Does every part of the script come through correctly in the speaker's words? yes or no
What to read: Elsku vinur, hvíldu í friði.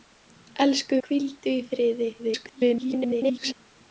no